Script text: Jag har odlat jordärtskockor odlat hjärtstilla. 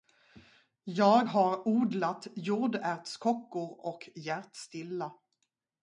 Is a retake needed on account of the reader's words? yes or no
yes